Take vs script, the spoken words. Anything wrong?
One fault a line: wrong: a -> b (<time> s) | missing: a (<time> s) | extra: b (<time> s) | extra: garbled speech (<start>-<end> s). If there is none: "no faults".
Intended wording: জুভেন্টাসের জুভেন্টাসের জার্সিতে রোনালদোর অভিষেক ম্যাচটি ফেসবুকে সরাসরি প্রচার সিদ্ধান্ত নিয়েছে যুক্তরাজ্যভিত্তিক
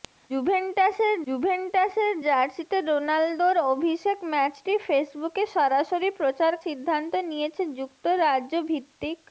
no faults